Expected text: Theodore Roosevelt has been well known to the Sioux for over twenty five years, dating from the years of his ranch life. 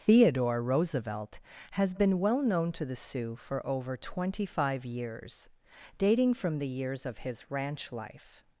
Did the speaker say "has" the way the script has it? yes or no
yes